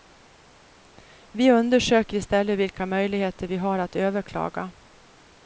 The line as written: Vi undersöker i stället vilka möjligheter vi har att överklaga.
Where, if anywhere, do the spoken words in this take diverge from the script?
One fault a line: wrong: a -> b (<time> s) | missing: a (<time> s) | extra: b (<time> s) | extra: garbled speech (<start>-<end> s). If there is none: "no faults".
no faults